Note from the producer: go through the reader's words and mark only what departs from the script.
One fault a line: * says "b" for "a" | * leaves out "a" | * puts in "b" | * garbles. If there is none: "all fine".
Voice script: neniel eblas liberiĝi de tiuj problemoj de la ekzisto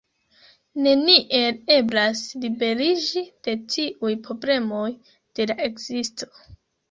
all fine